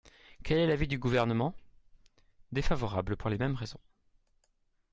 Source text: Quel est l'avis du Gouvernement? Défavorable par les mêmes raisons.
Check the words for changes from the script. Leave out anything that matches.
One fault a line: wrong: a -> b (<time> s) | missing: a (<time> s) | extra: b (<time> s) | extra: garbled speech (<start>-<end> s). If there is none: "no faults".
wrong: par -> pour (3.1 s)